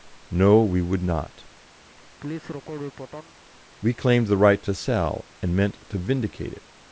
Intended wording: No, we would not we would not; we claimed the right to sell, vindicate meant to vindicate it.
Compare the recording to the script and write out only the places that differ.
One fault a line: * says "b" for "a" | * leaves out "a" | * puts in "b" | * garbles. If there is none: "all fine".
* leaves out "would not we"
* says "and" for "vindicate"